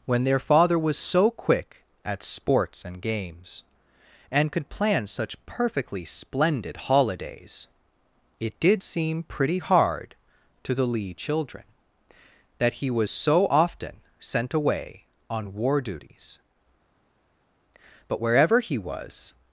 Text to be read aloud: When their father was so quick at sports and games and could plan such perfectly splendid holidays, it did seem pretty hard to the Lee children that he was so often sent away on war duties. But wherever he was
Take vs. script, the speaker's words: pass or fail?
pass